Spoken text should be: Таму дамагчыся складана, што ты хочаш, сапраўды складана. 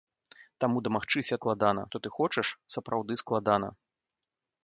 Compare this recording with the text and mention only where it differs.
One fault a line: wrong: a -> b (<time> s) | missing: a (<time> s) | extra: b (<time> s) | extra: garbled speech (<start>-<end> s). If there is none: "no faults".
no faults